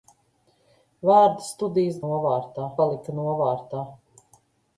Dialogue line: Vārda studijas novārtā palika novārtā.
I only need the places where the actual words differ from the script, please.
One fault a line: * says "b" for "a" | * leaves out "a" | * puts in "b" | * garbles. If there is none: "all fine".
all fine